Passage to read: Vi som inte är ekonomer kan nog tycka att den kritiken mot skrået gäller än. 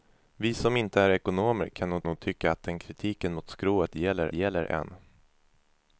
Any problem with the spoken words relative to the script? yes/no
yes